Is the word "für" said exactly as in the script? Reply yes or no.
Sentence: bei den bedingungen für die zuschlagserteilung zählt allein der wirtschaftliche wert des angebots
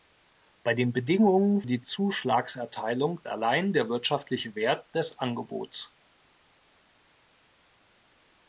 no